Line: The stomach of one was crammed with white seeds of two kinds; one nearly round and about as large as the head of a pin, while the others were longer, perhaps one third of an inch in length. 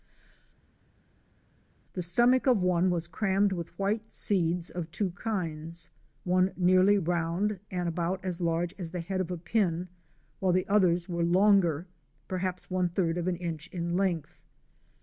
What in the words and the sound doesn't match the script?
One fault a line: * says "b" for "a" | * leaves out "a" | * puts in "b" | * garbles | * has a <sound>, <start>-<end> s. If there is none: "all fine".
all fine